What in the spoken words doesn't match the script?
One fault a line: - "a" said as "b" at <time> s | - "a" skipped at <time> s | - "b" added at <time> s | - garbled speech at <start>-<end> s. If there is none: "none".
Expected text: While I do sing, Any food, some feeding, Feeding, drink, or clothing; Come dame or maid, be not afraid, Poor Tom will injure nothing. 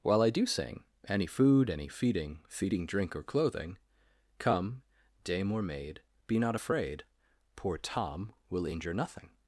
- "some" said as "any" at 1.7 s